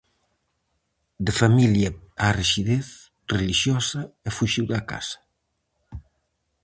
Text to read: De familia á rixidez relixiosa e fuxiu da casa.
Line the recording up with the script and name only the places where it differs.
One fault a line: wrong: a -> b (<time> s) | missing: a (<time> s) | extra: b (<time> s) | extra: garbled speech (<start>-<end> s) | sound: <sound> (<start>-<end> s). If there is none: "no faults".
no faults